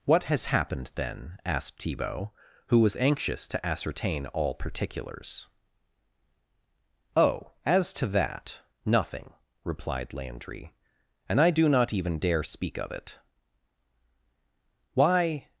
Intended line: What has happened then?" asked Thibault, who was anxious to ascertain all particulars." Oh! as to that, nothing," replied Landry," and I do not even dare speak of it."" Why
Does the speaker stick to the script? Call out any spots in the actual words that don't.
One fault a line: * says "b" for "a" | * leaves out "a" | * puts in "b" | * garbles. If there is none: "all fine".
all fine